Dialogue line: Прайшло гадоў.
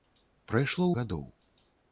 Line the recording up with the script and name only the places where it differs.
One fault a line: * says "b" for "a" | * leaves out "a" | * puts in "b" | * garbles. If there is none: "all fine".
all fine